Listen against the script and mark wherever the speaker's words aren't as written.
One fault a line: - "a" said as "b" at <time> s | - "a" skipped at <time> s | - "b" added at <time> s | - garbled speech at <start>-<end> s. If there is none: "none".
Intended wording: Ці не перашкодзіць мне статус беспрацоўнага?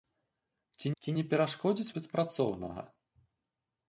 - "ці" added at 1.0 s
- "мне статус" skipped at 1.9 s